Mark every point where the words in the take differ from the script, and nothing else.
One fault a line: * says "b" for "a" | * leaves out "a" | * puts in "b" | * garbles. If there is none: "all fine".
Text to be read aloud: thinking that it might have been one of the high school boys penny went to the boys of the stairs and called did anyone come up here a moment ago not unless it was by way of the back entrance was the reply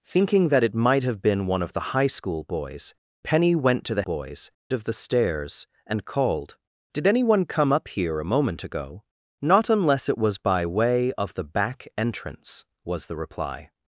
all fine